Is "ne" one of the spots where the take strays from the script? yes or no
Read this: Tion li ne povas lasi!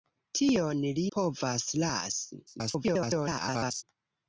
yes